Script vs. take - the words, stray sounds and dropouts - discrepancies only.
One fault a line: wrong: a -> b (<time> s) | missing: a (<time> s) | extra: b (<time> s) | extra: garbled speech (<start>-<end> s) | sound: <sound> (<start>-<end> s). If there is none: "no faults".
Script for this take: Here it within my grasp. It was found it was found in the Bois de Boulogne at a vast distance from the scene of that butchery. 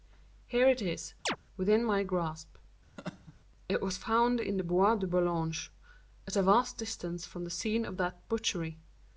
extra: is (0.8 s)
sound: chirp (1.3-1.4 s)
sound: laugh (3.0-3.3 s)
missing: it was found (4.4 s)